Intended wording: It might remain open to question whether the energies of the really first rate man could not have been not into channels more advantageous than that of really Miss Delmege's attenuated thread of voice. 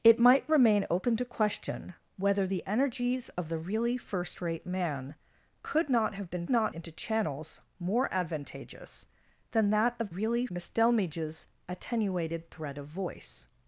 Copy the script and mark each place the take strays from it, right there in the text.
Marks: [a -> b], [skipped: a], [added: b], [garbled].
It might remain open to question whether the energies of the really first rate man could not have been not into channels more advantageous than that of really Miss Delmege's attenuated thread of voice.